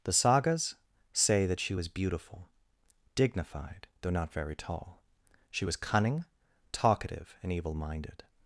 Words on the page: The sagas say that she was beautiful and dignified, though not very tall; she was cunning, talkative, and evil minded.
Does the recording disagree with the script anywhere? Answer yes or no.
yes